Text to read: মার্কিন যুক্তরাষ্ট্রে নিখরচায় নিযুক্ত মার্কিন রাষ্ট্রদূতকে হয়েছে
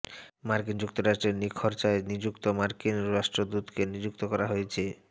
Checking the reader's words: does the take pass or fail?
fail